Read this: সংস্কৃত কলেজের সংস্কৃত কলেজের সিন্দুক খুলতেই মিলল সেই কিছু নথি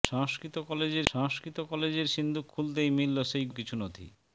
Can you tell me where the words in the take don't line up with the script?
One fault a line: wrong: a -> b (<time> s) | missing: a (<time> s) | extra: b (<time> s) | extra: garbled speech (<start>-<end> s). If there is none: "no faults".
no faults